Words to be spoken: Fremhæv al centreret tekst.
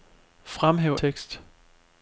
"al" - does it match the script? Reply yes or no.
no